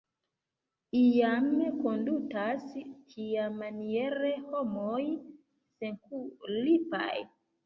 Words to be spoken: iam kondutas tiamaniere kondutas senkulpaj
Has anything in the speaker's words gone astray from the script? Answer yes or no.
yes